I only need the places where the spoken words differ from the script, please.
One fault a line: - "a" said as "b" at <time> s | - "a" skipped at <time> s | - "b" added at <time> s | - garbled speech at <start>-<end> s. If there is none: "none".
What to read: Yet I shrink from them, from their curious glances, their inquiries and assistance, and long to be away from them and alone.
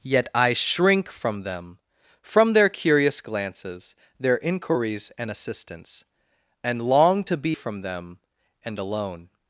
- "away" skipped at 7.6 s